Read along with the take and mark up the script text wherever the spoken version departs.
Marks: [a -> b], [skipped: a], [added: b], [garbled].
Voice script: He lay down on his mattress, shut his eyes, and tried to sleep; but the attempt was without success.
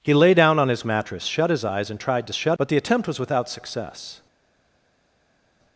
He lay down on his mattress, shut his eyes, and tried to [sleep; -> shut] but the attempt was without success.